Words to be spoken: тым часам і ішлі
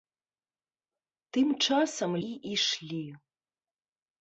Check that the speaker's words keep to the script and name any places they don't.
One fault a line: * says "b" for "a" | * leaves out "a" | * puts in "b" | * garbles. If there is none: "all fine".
all fine